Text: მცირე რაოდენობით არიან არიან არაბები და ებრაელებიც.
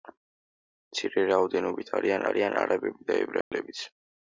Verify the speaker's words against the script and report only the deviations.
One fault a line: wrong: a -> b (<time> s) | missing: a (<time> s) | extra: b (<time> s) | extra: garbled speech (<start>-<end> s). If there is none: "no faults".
no faults